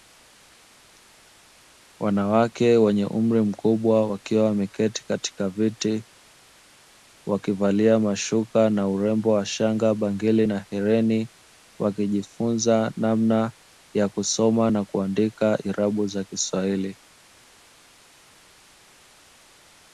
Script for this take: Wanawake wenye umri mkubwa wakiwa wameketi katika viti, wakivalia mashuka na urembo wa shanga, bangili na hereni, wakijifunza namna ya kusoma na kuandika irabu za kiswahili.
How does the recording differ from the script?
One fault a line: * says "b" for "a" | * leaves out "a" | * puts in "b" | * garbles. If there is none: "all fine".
all fine